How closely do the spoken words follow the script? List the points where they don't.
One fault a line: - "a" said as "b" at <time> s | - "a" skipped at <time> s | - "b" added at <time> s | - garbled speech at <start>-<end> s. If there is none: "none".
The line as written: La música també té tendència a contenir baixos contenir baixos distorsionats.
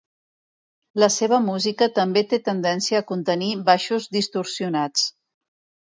- "seva" added at 1.1 s
- "contenir baixos" skipped at 4.1 s